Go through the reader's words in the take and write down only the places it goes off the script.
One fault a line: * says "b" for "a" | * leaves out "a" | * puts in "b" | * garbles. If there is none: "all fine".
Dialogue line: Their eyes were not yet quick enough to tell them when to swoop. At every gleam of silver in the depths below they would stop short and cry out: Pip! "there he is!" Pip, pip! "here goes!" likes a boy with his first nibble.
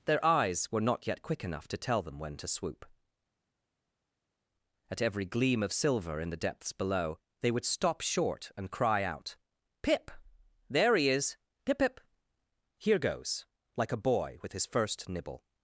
* says "like" for "likes"